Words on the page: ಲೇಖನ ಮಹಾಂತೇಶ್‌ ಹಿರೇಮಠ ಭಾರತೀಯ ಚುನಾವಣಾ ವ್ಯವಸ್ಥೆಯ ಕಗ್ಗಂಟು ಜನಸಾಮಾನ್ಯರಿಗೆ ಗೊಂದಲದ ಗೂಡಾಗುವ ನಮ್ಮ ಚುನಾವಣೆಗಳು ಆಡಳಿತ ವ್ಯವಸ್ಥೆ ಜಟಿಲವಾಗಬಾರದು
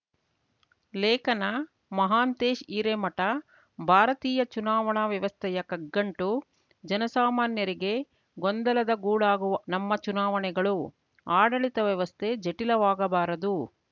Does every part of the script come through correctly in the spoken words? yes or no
yes